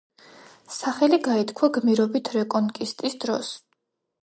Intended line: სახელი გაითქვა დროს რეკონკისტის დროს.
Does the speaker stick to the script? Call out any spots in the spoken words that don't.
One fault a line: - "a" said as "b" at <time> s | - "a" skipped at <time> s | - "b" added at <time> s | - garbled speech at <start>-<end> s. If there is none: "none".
- "დროს" said as "გმირობით" at 1.8 s